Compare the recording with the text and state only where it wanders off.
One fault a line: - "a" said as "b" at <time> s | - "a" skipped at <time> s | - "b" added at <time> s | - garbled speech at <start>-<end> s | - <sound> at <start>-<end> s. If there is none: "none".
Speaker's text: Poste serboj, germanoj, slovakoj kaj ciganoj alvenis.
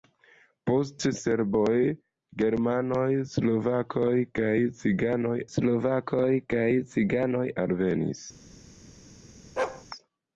- "slovakoj kaj ciganoj" added at 5.5 s
- bark at 9.6-9.8 s